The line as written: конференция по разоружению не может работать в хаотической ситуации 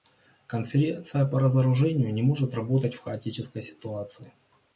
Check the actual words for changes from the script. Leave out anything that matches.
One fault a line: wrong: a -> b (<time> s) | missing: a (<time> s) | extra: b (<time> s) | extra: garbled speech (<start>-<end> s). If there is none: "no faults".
no faults